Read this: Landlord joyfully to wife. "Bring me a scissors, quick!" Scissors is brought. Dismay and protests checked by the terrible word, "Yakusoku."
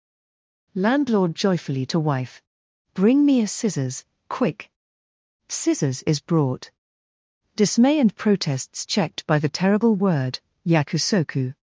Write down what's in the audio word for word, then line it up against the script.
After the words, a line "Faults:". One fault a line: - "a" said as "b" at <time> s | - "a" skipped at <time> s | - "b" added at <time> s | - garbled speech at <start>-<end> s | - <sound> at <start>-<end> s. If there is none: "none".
Landlord joyfully to wife. "Bring me a scissors, quick!" Scissors is brought. Dismay and protests checked by the terrible word, "Yakusoku."
Faults:
none